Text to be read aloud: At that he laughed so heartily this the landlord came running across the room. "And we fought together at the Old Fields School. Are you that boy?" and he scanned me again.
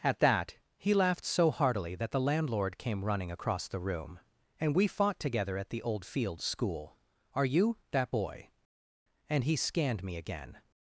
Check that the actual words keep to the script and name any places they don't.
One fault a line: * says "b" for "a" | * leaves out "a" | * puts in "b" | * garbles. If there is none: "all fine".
* says "that" for "this"